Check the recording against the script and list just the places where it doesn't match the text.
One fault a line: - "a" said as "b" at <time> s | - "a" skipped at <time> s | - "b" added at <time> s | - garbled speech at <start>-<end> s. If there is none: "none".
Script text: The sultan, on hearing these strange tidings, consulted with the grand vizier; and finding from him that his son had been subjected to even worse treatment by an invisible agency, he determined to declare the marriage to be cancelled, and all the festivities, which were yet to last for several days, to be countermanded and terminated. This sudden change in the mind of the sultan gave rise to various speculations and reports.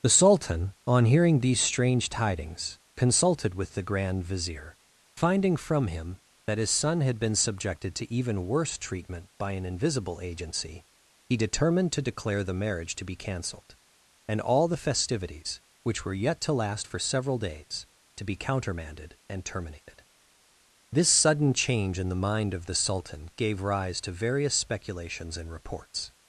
- "and" skipped at 4.8 s